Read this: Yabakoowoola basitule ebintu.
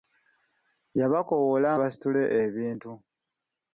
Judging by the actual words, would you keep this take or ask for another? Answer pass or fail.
pass